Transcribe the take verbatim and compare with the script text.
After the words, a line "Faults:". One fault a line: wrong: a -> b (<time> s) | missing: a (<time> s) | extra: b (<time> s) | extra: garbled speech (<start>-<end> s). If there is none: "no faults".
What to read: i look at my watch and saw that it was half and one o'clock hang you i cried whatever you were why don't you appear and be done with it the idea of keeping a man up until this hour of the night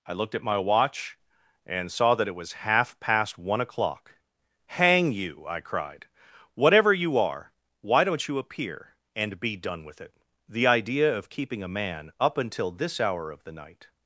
i looked at my watch and saw that it was half past one o'clock hang you i cried whatever you are why don't you appear and be done with it the idea of keeping a man up until this hour of the night
Faults:
wrong: look -> looked (0.1 s)
wrong: and -> past (3.0 s)
wrong: were -> are (7.2 s)